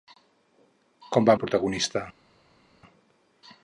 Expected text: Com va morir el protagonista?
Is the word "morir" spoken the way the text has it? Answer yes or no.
no